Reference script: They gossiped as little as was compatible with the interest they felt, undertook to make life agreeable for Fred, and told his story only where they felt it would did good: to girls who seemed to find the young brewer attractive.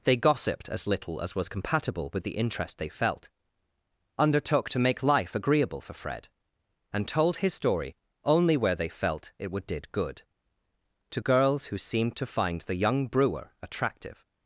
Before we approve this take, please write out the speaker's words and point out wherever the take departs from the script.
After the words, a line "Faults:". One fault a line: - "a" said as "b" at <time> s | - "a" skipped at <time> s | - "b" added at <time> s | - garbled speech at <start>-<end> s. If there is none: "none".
They gossiped as little as was compatible with the interest they felt, undertook to make life agreeable for Fred, and told his story only where they felt it would did good: to girls who seemed to find the young brewer attractive.
Faults:
none